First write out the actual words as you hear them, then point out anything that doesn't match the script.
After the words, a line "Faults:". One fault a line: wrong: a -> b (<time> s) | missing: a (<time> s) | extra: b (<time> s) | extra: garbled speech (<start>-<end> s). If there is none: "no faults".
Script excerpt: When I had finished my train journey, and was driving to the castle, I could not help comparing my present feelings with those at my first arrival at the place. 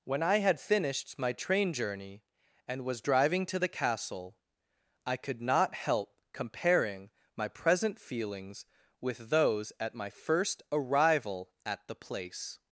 When I had finished my train journey, and was driving to the castle, I could not help comparing my present feelings with those at my first arrival at the place.
Faults:
no faults